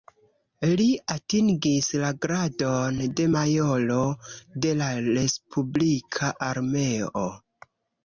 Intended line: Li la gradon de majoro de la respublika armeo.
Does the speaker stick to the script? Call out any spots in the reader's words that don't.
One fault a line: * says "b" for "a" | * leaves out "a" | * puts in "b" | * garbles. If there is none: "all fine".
* puts in "atingis"